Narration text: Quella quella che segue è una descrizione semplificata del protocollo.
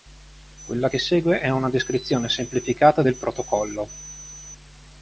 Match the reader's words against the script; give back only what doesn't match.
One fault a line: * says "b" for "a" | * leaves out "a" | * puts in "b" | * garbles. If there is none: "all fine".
* leaves out "quella"